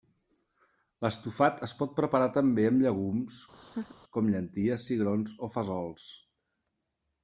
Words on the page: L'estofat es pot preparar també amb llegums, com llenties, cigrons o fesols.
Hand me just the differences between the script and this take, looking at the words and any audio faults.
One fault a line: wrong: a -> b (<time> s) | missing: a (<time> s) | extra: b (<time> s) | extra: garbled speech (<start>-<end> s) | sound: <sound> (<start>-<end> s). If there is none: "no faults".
sound: laugh (3.5-4.0 s)